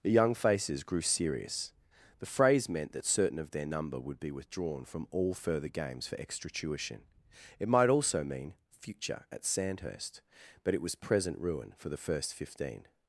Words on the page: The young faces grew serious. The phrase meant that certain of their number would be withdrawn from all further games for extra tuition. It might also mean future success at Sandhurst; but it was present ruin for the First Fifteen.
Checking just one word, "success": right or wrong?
wrong